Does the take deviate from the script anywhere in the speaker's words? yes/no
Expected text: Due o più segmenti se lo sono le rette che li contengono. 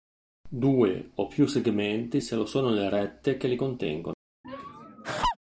no